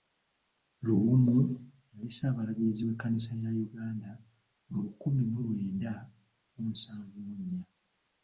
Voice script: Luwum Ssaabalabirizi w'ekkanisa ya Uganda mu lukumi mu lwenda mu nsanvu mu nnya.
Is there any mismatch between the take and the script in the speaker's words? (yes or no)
yes